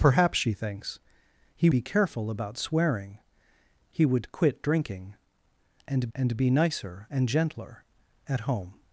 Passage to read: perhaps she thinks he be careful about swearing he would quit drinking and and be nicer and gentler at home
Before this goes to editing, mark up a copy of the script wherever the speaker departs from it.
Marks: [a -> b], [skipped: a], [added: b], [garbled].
perhaps she thinks he be careful about swearing he would quit drinking and and be nicer and gentler at home